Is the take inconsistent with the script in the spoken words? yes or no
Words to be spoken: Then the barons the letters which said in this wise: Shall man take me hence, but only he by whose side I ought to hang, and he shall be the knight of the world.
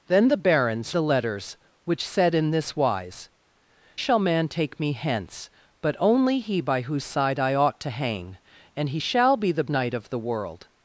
no